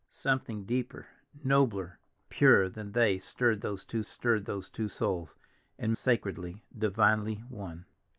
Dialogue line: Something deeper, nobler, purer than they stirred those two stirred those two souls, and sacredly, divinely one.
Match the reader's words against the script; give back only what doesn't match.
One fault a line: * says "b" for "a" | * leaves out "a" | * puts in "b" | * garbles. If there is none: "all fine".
all fine